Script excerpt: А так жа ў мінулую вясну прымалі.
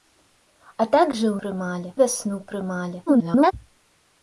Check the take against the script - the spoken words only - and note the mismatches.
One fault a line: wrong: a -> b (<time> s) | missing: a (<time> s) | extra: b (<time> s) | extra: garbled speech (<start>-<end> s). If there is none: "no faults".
wrong: мінулую -> прымалі (1.4 s)
extra: garbled speech (3.1-3.5 s)